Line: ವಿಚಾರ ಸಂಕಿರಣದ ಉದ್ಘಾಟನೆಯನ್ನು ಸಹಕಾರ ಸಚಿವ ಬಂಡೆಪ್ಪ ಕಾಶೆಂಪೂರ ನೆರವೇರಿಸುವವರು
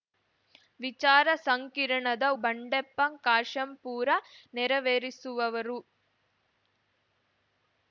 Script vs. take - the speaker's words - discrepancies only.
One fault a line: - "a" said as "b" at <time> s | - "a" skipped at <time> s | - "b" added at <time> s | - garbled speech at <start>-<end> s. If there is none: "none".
- "ಉದ್ಘಾಟನೆಯನ್ನು ಸಹಕಾರ ಸಚಿವ" skipped at 2.2 s